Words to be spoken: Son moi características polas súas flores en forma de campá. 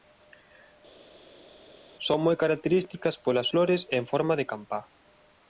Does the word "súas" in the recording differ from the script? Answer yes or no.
yes